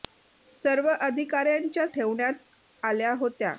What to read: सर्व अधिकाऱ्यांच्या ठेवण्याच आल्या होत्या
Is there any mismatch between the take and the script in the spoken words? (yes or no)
no